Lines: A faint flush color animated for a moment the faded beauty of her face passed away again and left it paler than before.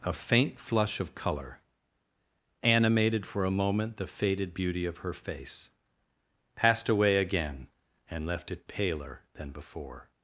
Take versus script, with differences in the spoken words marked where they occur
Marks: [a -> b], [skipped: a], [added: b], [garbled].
A faint flush [added: of] color animated for a moment the faded beauty of her face passed away again and left it paler than before.